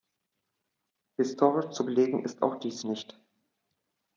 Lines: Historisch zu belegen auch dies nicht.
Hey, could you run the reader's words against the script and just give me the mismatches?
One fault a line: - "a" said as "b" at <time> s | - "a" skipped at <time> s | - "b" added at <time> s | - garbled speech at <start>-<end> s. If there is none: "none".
- "ist" added at 2.2 s